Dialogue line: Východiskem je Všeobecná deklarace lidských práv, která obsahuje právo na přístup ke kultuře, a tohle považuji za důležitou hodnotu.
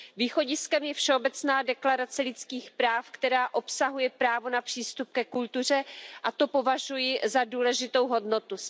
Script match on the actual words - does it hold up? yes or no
no